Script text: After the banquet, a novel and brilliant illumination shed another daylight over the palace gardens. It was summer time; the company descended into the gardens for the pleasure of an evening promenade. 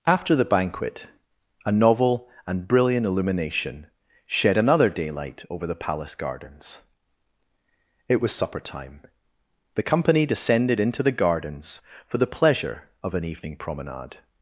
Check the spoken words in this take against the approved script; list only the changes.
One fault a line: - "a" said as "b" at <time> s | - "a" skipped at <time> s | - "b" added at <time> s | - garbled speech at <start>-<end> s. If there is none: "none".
- "summer" said as "supper" at 8.3 s